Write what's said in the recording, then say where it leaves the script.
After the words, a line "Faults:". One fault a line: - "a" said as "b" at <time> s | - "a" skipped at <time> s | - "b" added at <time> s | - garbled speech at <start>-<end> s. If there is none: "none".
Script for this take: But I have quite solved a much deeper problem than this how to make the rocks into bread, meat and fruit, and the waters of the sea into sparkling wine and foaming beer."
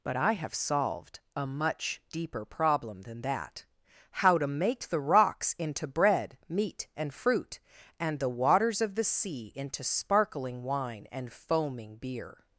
But I have solved a much deeper problem than that how to make the rocks into bread, meat and fruit, and the waters of the sea into sparkling wine and foaming beer."
Faults:
- "quite" skipped at 0.5 s
- "this" said as "that" at 3.2 s